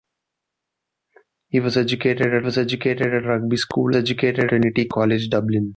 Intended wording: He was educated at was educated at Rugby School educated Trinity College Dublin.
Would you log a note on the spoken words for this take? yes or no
no